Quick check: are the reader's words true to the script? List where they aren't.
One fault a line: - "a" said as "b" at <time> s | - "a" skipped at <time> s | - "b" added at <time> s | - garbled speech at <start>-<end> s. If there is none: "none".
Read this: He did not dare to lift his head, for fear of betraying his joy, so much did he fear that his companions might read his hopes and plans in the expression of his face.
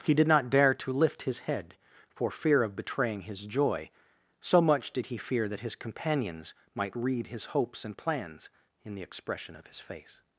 none